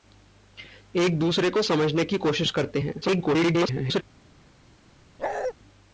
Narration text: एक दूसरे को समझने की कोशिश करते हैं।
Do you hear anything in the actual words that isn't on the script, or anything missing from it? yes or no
yes